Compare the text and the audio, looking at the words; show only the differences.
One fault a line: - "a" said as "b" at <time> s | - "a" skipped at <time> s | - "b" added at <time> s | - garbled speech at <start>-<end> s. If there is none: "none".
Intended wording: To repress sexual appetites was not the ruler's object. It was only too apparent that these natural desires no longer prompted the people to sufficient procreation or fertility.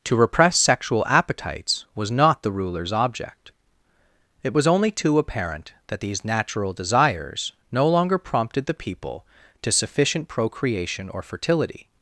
none